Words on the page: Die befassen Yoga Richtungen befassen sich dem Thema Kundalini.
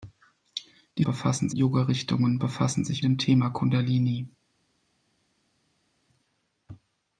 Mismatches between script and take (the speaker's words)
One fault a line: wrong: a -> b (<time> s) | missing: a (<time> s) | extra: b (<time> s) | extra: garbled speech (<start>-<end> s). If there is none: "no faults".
no faults